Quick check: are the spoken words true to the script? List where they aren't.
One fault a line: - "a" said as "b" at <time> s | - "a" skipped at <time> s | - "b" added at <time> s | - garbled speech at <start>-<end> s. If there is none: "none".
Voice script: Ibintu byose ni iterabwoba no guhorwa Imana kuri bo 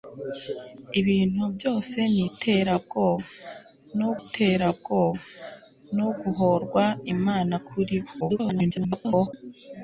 - "iterabwoba no" added at 4.2 s
- garbled speech at 8.2-9.3 s